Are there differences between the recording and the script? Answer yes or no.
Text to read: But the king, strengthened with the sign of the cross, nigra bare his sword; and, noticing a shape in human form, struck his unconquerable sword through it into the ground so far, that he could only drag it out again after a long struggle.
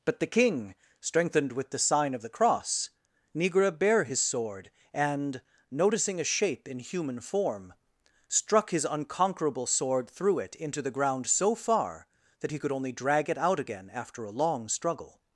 no